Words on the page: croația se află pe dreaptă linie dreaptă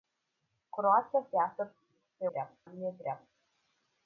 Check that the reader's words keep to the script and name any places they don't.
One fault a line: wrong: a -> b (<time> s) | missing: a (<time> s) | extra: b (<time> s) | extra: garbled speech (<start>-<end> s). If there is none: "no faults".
no faults